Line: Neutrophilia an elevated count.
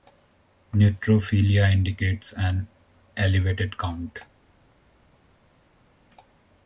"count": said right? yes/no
yes